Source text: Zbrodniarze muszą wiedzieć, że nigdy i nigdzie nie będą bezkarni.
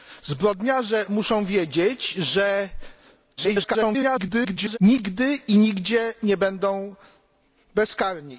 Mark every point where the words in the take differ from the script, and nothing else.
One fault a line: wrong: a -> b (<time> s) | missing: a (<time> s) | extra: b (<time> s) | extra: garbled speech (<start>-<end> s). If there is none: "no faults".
extra: garbled speech (3.4-4.8 s)